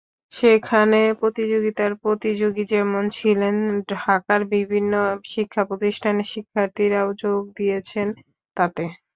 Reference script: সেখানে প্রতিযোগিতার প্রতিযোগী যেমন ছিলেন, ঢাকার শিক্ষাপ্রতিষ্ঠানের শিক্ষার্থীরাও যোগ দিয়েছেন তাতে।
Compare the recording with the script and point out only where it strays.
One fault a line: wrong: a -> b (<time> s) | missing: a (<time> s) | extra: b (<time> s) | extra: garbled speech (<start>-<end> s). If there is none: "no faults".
extra: বিভিন্ন (4.5 s)